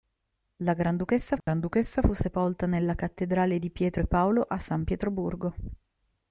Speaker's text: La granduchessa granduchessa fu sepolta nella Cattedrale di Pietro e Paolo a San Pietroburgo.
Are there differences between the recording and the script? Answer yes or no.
no